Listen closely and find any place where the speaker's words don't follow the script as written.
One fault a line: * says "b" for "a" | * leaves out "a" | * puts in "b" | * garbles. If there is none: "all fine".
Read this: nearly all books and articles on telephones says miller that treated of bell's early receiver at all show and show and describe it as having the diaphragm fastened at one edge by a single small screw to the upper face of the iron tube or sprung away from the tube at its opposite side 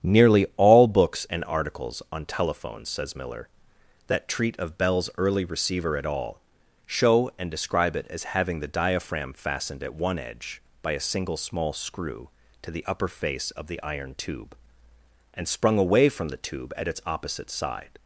* says "treat" for "treated"
* leaves out "show and"
* says "and" for "or"